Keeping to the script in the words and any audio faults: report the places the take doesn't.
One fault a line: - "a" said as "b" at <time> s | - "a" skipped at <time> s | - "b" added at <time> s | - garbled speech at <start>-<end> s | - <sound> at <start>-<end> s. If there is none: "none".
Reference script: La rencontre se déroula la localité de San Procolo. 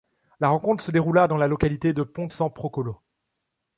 - "dans" added at 1.3 s
- "Ponte" added at 2.0 s